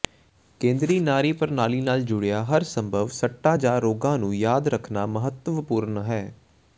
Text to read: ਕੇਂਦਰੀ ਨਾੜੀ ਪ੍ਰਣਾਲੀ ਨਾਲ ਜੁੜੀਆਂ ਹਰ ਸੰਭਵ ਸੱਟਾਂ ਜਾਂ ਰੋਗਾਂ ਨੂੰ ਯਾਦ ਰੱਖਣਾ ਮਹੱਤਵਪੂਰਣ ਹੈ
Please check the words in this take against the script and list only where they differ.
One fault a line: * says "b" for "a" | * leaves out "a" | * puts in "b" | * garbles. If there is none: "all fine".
all fine